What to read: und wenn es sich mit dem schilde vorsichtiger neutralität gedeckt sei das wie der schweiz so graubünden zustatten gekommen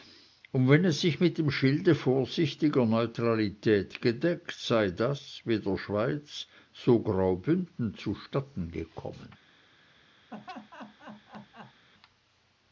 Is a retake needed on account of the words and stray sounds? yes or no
yes